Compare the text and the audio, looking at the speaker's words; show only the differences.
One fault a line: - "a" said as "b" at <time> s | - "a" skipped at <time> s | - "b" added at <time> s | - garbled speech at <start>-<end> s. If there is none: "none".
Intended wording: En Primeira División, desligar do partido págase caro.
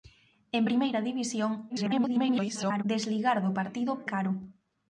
- garbled speech at 1.7-2.8 s
- "págase" skipped at 3.9 s